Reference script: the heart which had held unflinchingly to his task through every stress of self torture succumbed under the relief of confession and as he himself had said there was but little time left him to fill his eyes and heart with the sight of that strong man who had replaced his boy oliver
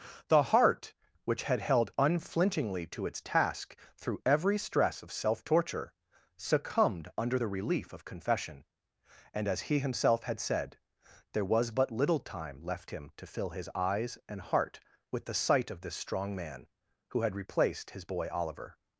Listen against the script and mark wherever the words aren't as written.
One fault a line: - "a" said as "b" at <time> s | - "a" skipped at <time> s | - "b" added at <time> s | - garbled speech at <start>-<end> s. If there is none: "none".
- "his" said as "its" at 3.0 s
- "that" said as "this" at 15.8 s